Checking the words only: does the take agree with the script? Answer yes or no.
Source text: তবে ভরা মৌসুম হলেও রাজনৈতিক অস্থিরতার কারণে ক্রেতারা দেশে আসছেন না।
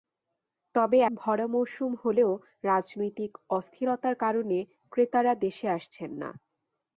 yes